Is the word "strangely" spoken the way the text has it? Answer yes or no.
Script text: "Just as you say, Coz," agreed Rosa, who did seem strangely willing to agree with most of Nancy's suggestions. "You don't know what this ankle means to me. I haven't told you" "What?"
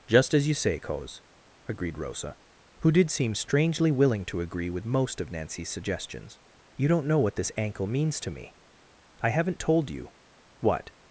yes